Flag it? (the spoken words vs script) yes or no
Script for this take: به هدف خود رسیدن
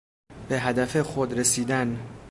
no